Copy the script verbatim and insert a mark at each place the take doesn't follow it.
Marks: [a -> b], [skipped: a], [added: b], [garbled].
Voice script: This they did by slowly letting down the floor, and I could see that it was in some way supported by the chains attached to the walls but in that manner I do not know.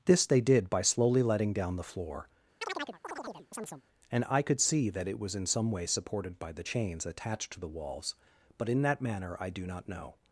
This they did by slowly letting down the floor, and I could see that it was in some way supported by the chains attached to the walls but in that manner I do not know.